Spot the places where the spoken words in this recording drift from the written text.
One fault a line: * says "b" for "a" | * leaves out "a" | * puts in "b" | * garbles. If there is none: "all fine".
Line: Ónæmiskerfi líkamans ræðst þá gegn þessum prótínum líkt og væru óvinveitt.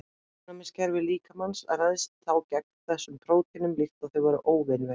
* puts in "þau"